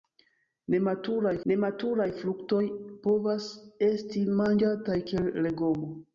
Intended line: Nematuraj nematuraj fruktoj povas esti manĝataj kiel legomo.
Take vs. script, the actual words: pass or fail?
pass